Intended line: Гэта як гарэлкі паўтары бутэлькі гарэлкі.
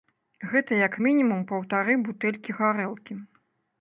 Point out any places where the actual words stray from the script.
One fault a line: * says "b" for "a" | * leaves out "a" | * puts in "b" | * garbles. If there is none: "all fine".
* says "мінімум" for "гарэлкі"